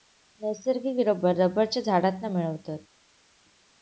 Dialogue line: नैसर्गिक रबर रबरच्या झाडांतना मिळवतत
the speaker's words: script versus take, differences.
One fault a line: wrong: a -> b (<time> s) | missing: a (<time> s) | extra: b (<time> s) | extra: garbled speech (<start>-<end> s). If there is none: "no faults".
no faults